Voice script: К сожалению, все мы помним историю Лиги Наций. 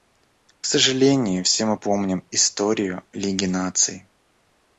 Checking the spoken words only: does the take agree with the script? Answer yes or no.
yes